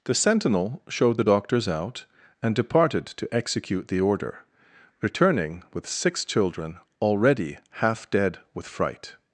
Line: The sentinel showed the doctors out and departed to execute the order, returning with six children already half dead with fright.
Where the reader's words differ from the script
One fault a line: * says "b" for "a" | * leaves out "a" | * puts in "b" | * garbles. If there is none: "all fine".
all fine